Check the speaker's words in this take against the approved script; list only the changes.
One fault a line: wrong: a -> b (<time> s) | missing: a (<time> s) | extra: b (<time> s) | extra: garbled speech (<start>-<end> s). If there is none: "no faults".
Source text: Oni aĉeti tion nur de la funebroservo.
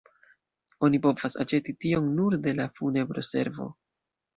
extra: povas (1.1 s)